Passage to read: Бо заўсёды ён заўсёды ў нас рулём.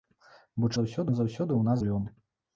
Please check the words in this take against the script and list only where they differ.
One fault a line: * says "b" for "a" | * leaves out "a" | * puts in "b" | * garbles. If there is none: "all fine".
all fine